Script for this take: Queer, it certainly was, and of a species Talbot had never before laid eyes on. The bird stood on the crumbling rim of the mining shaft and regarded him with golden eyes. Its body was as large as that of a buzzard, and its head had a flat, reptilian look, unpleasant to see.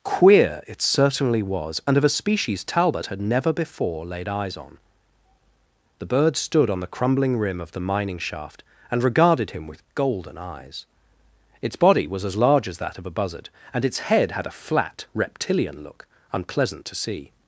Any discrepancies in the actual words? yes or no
no